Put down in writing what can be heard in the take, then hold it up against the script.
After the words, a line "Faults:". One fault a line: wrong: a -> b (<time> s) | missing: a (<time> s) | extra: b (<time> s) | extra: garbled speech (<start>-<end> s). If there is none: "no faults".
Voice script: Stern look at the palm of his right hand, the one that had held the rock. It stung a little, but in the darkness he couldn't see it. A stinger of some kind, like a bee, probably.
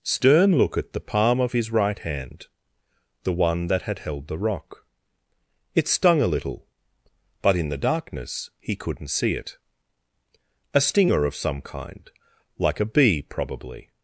Stern look at the palm of his right hand, the one that had held the rock. It stung a little, but in the darkness he couldn't see it. A stinger of some kind, like a bee, probably.
Faults:
no faults